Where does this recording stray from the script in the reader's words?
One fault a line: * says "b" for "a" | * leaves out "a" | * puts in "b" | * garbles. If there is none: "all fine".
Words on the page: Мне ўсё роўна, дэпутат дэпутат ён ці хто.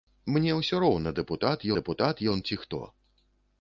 all fine